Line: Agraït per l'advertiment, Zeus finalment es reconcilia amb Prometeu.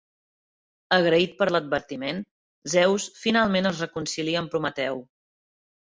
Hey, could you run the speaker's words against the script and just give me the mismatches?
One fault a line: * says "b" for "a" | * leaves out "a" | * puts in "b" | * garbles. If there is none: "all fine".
all fine